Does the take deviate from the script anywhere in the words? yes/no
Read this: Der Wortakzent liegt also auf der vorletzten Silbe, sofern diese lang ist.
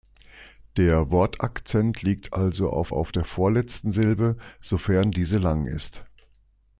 yes